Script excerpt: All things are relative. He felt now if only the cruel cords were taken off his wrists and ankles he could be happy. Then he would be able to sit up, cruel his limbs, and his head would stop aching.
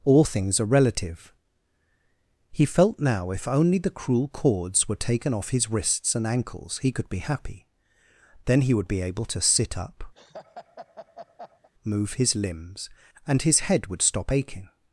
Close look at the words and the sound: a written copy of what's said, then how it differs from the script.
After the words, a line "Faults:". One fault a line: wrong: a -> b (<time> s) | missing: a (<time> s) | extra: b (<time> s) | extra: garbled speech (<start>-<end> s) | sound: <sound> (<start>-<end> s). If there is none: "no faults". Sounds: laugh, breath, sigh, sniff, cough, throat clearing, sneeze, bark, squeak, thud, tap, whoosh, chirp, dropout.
All things are relative. He felt now if only the cruel cords were taken off his wrists and ankles he could be happy. Then he would be able to sit up, move his limbs, and his head would stop aching.
Faults:
sound: laugh (10.1-11.7 s)
wrong: cruel -> move (11.8 s)